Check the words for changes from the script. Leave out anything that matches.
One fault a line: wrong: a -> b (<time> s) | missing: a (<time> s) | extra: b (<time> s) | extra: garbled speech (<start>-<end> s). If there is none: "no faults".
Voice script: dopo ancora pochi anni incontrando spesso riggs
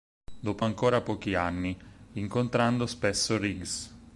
no faults